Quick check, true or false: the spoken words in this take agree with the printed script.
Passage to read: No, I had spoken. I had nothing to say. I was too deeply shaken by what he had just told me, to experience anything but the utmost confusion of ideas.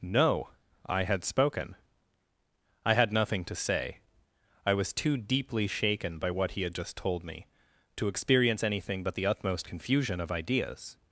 true